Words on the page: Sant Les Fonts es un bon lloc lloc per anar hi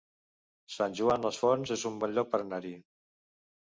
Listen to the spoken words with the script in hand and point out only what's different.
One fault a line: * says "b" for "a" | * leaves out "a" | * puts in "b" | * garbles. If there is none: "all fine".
* puts in "Joan"
* leaves out "lloc"